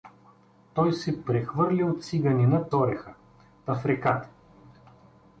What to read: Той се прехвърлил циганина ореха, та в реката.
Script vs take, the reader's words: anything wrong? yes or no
no